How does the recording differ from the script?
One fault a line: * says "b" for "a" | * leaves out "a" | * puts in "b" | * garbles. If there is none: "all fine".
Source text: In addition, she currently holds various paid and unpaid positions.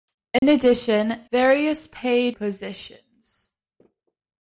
* leaves out "she currently holds"
* leaves out "and unpaid"